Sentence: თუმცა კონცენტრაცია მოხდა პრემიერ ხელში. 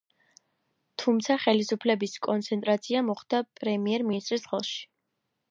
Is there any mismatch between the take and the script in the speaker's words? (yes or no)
yes